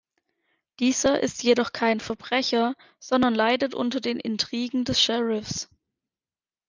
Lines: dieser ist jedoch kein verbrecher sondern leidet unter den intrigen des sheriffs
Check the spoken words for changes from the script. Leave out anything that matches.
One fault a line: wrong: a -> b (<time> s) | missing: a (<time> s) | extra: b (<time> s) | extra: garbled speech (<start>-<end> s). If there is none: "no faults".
no faults